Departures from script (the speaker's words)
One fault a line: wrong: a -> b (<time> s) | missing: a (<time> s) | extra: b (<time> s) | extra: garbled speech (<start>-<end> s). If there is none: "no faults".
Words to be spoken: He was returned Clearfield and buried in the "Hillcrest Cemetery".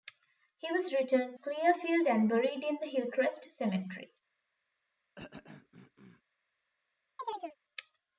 no faults